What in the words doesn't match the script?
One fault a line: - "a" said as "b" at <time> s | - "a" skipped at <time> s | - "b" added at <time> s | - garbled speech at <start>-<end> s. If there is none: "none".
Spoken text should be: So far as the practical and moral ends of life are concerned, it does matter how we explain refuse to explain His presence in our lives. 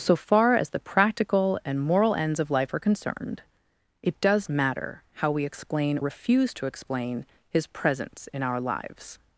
none